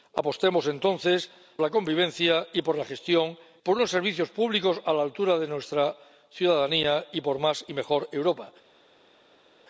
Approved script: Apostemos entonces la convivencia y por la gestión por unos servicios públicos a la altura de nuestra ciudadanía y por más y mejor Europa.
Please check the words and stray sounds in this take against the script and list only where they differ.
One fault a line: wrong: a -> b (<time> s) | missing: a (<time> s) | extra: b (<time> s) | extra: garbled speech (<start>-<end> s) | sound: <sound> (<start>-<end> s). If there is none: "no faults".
no faults